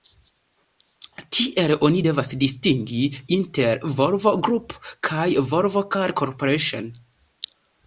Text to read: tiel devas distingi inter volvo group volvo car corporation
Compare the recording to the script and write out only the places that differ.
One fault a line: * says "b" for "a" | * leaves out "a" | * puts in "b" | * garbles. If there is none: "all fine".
* puts in "oni"
* puts in "kaj"